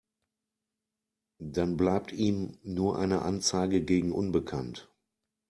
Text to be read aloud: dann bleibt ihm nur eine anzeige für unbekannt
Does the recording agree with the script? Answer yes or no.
no